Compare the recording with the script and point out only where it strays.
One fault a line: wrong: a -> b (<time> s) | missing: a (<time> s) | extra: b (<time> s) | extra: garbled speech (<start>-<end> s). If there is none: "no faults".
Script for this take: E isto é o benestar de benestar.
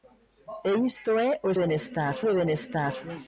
no faults